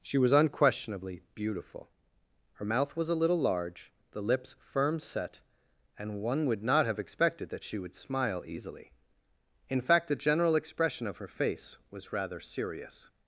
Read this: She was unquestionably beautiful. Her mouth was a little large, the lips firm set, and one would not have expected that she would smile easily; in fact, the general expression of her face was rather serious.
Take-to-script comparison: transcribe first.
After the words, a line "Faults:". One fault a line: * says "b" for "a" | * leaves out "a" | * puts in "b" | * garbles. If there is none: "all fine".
She was unquestionably beautiful. Her mouth was a little large, the lips firm set, and one would not have expected that she would smile easily; in fact, the general expression of her face was rather serious.
Faults:
all fine